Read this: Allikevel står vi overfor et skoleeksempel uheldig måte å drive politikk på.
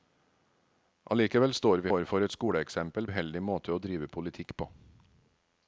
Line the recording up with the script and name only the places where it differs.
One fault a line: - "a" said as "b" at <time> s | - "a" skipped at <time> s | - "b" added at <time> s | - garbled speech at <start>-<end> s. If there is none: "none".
none